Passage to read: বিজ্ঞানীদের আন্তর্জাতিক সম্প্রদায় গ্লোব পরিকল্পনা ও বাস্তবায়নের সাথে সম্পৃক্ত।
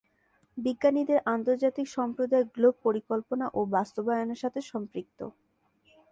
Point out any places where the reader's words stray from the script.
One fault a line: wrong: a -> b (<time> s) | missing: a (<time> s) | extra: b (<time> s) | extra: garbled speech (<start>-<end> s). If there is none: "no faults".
no faults